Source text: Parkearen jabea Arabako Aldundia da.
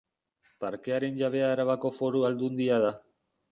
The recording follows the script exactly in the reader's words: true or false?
false